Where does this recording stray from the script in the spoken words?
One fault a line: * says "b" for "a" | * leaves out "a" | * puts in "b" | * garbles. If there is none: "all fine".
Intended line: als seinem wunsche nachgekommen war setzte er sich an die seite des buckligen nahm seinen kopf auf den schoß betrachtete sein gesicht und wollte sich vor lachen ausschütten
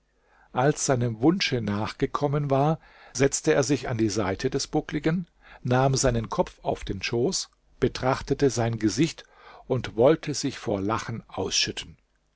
all fine